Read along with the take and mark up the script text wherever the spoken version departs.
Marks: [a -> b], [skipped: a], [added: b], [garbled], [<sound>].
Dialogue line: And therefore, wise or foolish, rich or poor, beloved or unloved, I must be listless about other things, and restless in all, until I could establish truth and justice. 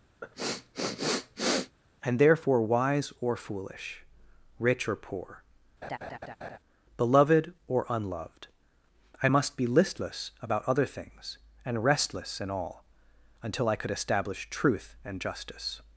[sniff] And therefore, wise or foolish, rich or poor, [laugh] beloved or unloved, I must be listless about other things, and restless in all, until I could establish truth and justice.